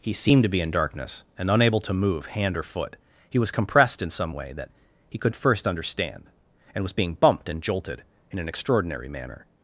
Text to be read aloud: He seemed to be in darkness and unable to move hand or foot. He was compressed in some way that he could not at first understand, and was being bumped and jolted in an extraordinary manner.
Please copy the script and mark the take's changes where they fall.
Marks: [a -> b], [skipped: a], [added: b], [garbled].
He seemed to be in darkness and unable to move hand or foot. He was compressed in some way that he could [skipped: not] at first understand, and was being bumped and jolted in an extraordinary manner.